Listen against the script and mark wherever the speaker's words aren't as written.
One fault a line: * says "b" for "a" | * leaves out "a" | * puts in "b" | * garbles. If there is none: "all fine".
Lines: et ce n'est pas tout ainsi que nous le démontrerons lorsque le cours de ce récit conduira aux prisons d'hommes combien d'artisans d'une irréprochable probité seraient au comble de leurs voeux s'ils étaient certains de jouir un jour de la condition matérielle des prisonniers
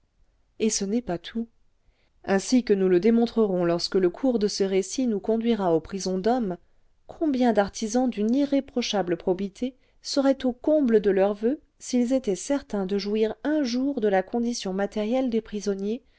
* puts in "nous"